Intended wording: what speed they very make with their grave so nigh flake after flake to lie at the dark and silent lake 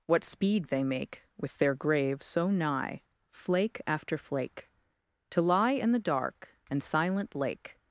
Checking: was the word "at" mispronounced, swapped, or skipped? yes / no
yes